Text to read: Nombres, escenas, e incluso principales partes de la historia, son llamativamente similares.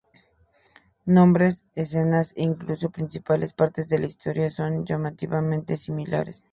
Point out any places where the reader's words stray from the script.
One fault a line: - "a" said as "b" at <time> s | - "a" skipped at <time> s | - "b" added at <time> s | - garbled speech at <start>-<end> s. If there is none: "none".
none